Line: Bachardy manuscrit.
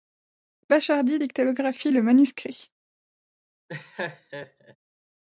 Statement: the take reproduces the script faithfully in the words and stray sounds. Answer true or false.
false